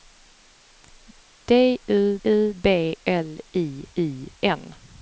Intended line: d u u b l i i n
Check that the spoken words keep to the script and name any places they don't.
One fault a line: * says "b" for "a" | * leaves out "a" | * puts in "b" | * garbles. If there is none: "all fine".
all fine